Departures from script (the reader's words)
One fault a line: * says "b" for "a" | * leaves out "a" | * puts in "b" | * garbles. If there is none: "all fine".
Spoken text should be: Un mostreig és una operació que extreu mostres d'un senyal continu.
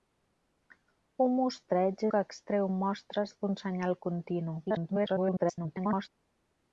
* leaves out "és una operació"
* garbles